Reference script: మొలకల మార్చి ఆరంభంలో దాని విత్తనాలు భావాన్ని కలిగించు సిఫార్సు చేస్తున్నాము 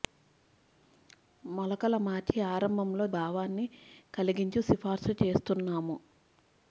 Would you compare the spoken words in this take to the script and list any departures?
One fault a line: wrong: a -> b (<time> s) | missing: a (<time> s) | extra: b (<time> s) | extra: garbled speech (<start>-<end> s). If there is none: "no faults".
missing: దాని విత్తనాలు (3.1 s)